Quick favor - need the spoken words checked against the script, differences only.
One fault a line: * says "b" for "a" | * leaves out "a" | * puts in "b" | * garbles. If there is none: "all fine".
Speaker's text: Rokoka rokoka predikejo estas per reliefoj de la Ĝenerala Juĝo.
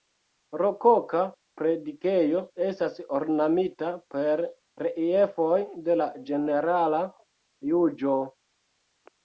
* leaves out "rokoka"
* puts in "ornamita"